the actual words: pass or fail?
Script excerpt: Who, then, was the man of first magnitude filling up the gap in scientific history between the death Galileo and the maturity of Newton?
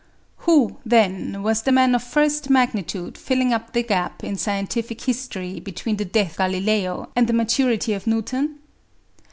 pass